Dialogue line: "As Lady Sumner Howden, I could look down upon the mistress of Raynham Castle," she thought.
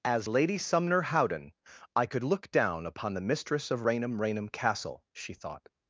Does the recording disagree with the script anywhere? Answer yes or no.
yes